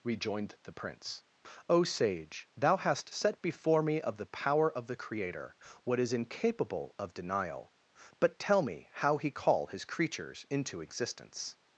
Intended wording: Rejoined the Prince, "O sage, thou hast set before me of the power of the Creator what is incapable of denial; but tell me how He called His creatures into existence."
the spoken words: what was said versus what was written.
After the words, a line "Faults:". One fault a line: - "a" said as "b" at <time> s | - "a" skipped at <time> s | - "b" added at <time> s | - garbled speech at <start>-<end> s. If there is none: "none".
Rejoined the Prince, "O sage, thou hast set before me of the power of the Creator what is incapable of denial; but tell me how He call His creatures into existence."
Faults:
- "called" said as "call" at 9.3 s